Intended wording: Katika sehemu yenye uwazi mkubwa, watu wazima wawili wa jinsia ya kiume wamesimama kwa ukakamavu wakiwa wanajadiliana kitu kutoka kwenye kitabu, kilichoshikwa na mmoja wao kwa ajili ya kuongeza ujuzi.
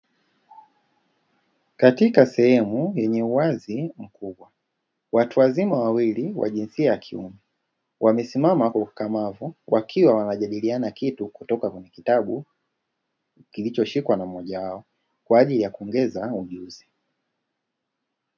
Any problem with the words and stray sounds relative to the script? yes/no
no